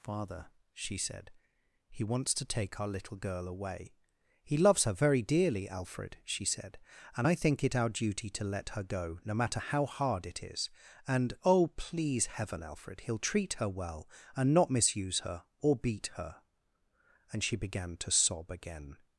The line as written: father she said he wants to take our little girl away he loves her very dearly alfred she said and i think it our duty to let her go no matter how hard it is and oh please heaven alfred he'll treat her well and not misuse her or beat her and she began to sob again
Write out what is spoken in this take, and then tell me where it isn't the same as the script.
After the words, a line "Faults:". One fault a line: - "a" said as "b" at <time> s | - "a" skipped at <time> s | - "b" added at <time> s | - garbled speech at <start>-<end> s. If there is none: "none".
father she said he wants to take our little girl away he loves her very dearly alfred she said and i think it our duty to let her go no matter how hard it is and oh please heaven alfred he'll treat her well and not misuse her or beat her and she began to sob again
Faults:
none